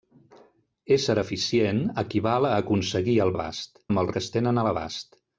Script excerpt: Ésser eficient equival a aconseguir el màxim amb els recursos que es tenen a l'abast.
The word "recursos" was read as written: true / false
false